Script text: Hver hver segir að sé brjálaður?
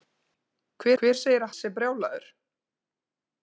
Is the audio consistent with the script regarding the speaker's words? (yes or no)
yes